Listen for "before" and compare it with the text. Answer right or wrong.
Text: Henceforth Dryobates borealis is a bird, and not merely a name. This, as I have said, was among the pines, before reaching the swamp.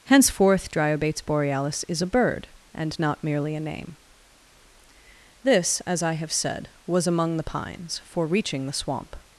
wrong